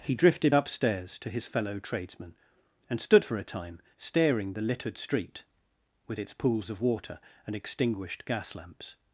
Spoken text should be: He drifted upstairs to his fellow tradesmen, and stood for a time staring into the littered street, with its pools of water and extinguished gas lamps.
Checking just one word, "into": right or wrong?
wrong